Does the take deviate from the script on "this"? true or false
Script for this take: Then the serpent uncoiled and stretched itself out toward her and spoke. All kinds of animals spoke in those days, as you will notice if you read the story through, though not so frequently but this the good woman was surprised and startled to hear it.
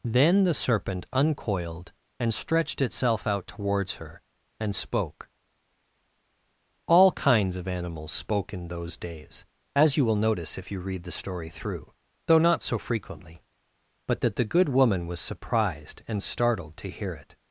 true